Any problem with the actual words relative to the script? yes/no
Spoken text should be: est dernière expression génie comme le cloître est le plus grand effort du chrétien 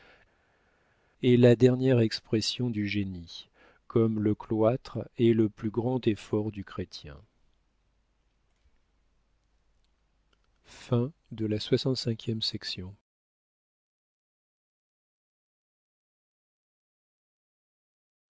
yes